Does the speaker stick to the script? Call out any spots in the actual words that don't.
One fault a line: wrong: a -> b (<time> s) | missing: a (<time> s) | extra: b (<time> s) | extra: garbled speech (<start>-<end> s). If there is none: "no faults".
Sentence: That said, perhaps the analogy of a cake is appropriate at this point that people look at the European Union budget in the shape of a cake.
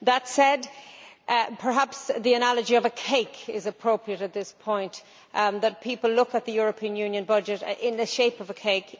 no faults